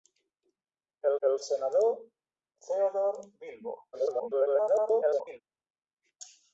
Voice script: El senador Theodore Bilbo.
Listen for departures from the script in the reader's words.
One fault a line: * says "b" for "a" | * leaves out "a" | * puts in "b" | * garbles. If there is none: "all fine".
* puts in "el"
* garbles